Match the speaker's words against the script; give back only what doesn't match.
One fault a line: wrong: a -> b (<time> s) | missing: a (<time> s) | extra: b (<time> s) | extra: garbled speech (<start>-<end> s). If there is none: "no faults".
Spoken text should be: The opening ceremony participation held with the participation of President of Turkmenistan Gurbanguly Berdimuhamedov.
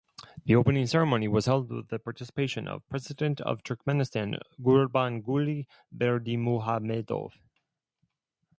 wrong: participation -> was (1.3 s)